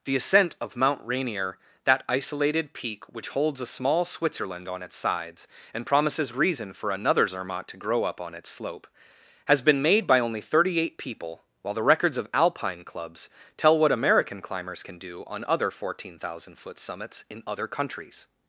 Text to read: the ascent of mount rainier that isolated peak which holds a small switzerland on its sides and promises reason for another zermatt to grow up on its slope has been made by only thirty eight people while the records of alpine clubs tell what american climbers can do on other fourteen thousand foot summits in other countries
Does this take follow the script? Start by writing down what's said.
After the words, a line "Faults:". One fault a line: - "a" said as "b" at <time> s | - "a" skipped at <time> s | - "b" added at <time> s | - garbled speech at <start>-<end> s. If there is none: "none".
the ascent of mount rainier that isolated peak which holds a small switzerland on its sides and promises reason for another zermatt to grow up on its slope has been made by only thirty eight people while the records of alpine clubs tell what american climbers can do on other fourteen thousand foot summits in other countries
Faults:
none